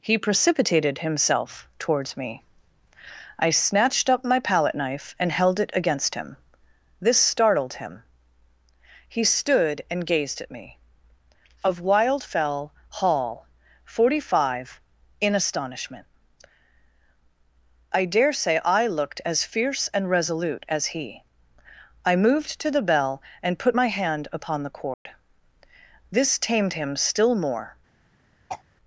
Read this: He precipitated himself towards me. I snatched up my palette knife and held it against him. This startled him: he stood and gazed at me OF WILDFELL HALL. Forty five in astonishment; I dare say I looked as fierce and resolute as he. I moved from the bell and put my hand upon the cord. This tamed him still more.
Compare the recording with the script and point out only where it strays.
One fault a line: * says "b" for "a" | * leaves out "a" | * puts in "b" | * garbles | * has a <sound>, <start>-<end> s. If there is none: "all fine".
* says "to" for "from"
* has a dropout, 24.9-25.1 s
* has a throat clearing, 28.5-28.6 s